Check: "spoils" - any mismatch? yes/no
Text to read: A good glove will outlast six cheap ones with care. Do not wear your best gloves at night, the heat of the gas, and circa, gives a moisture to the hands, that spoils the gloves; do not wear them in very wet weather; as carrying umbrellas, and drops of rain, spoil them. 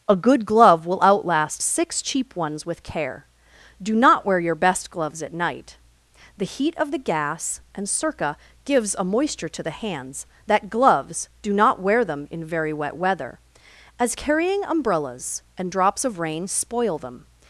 yes